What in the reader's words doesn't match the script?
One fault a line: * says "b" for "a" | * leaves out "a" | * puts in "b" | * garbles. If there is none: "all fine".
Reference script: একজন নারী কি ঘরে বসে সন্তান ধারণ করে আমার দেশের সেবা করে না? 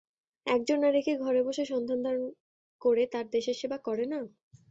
* says "তার" for "আমার"